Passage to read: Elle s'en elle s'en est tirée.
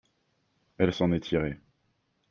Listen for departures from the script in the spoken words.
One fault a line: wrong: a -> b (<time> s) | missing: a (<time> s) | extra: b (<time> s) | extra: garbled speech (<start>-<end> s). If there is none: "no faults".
missing: elle s'en (1.1 s)